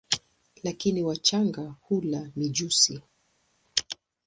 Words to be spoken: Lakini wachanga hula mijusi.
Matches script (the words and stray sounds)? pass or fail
pass